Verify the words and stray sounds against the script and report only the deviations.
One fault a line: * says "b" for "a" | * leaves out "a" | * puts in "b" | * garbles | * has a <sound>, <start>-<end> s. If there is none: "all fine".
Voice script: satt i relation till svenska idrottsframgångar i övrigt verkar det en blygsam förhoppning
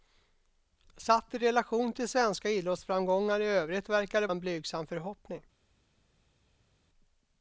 all fine